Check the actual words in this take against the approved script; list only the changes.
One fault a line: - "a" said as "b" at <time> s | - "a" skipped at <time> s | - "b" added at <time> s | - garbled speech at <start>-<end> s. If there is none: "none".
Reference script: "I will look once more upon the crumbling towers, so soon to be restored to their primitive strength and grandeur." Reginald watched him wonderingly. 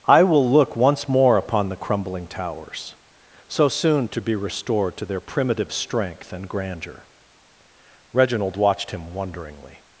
none